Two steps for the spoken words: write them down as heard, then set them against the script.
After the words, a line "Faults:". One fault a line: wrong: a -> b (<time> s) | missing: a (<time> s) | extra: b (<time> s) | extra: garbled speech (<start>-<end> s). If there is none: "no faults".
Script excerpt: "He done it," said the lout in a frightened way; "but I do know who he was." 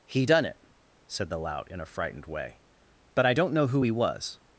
"He done it," said the lout in a frightened way; "but I don't know who he was."
Faults:
wrong: do -> don't (3.3 s)